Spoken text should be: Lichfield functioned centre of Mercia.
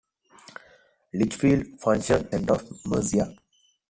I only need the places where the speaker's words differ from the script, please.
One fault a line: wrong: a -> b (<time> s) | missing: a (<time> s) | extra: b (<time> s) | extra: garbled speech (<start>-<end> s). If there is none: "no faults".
no faults